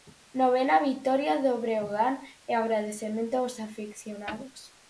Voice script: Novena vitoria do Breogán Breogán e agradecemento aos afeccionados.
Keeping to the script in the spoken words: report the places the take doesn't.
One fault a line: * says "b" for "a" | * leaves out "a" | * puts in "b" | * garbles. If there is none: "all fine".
* leaves out "Breogán"